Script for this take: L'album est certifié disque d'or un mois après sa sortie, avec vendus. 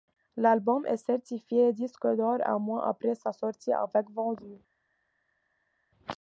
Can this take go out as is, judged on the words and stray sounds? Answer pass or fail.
pass